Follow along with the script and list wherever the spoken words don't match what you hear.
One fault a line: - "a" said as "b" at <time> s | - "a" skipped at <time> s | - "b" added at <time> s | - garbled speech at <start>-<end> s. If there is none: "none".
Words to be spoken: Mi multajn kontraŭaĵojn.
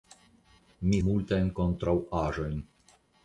none